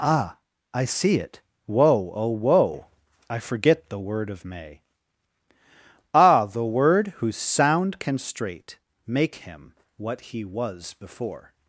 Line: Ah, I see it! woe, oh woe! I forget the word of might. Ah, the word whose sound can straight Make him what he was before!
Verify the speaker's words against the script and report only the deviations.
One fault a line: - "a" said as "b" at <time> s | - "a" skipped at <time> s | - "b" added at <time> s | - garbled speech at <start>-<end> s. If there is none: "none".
- "might" said as "may" at 4.4 s